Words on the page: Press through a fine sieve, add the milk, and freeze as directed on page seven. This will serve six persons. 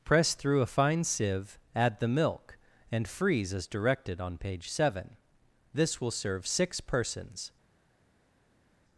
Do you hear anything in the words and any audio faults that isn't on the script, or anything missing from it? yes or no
no